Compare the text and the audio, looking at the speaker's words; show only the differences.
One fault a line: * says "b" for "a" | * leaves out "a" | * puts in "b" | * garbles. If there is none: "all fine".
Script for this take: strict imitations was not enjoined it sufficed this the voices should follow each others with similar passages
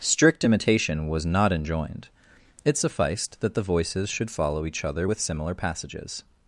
* says "imitation" for "imitations"
* says "that" for "this"
* says "other" for "others"